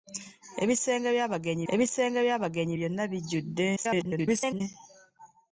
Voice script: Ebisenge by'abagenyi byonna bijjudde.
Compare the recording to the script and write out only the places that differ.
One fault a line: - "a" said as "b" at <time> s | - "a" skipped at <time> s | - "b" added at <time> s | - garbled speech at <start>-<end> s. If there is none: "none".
- "ebisenge by'abagenyi" added at 1.7 s
- garbled speech at 3.8-4.6 s